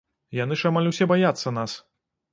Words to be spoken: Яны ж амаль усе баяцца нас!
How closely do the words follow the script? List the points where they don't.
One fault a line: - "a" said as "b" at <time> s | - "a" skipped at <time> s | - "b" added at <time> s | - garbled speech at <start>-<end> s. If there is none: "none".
none